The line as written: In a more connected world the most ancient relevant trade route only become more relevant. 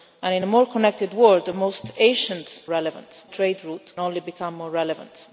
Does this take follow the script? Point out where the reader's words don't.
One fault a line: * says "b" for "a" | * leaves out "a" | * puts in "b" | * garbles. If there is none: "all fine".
all fine